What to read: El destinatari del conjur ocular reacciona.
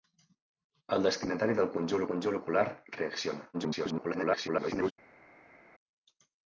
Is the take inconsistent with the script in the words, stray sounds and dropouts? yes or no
yes